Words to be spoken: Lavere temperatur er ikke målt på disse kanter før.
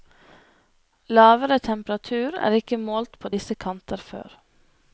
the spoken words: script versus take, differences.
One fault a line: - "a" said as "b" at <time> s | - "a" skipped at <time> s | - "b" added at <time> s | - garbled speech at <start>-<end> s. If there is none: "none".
none